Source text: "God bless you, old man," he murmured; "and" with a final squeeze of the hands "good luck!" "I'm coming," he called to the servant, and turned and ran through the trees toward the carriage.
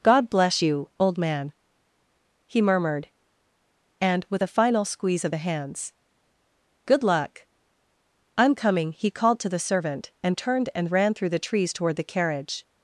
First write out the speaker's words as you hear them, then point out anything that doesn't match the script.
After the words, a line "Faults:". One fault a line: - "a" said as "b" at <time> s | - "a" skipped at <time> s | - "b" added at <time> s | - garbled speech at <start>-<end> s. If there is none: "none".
"God bless you, old man," he murmured; "and" with a final squeeze of the hands "good luck!" "I'm coming," he called to the servant, and turned and ran through the trees toward the carriage.
Faults:
none